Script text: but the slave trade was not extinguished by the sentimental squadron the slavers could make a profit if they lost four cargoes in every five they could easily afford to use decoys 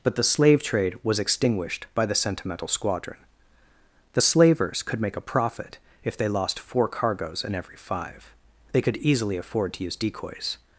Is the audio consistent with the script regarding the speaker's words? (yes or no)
no